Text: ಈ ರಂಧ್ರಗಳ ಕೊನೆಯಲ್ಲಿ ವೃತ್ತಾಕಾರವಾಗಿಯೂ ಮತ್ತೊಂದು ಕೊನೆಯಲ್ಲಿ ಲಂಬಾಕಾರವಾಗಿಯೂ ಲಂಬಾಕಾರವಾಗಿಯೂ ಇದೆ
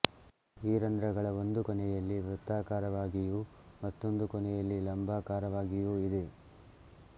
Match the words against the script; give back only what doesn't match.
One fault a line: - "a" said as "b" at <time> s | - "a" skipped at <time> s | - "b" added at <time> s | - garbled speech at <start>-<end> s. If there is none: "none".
- "ಒಂದು" added at 1.4 s
- "ಲಂಬಾಕಾರವಾಗಿಯೂ" skipped at 5.9 s